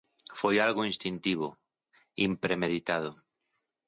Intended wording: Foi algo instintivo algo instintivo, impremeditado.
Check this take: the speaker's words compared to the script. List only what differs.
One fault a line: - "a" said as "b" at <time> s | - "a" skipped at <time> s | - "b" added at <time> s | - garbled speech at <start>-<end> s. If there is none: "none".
- "algo instintivo" skipped at 1.5 s